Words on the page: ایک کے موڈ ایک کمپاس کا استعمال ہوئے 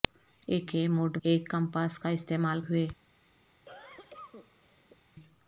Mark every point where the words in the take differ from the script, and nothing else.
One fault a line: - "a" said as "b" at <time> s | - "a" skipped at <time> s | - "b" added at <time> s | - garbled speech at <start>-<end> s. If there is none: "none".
none